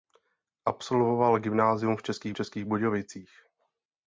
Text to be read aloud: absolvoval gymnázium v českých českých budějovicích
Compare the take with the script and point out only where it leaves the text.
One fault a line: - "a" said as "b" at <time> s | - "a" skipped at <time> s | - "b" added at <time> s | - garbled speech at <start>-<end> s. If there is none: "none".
none